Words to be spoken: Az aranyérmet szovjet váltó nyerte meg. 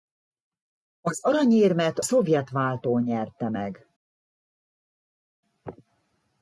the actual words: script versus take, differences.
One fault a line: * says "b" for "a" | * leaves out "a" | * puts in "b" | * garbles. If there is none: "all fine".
all fine